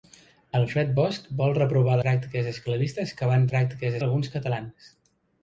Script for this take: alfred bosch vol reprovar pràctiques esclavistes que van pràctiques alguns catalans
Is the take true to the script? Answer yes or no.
yes